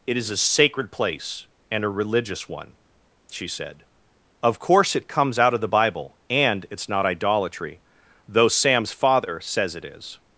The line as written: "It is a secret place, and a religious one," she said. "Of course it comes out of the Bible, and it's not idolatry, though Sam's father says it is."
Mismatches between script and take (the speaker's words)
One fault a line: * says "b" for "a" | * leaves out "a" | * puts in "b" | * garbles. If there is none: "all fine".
* says "sacred" for "secret"